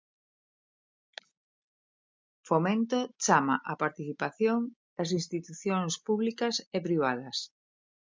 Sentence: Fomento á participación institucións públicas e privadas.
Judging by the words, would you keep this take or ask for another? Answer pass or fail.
fail